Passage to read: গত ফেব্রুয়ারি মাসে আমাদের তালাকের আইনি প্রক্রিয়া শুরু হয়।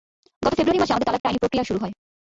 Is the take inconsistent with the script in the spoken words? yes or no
no